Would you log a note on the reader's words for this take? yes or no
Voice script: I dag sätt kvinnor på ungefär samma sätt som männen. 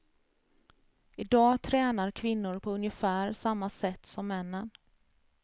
yes